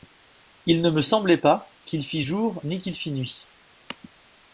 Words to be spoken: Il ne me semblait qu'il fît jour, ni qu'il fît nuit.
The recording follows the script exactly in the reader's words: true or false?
false